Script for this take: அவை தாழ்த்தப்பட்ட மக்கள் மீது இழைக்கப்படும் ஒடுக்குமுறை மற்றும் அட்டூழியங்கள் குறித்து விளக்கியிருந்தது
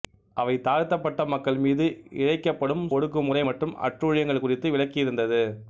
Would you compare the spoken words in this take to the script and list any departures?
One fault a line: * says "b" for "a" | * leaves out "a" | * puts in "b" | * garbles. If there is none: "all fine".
all fine